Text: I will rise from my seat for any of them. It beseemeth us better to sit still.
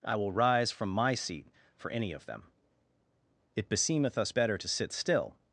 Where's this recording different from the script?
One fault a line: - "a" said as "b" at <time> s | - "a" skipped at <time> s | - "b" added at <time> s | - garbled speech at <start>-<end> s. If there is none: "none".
none